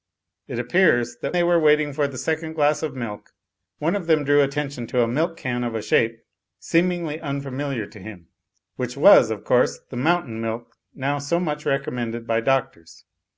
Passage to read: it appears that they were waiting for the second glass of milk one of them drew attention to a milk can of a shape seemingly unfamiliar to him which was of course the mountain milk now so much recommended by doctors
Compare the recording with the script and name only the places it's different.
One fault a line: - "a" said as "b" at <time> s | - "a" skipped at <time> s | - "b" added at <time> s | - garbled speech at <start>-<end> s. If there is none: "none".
none